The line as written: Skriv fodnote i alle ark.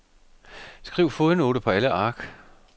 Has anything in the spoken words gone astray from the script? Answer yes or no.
yes